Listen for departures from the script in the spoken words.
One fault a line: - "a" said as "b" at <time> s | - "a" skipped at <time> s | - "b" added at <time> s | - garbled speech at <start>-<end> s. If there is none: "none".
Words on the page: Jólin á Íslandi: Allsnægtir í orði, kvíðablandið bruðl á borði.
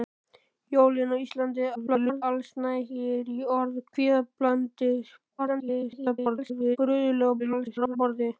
- garbled speech at 1.7-2.2 s
- garbled speech at 5.4-6.8 s
- garbled speech at 7.4-8.0 s